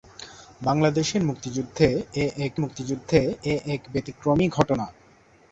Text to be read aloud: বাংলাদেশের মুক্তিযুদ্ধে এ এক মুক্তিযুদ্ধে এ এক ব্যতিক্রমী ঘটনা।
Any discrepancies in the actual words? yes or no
no